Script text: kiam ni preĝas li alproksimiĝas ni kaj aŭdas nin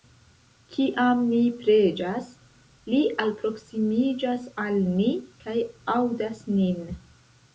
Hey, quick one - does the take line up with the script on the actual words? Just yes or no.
no